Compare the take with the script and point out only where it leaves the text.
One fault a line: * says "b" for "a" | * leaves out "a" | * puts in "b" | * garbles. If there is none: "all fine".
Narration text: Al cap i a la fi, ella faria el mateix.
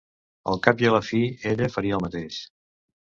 all fine